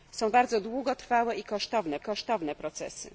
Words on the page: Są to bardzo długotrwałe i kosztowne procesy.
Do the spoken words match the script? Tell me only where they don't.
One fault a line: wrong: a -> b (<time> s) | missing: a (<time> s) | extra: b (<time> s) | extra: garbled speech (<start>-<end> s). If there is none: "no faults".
missing: to (0.3 s)
extra: kosztowne (2.0 s)